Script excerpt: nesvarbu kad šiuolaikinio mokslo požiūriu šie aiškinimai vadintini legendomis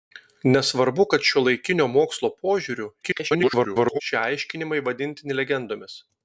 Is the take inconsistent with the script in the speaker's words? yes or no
yes